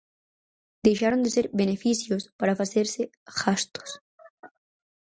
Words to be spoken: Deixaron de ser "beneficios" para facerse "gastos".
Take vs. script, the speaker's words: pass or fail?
pass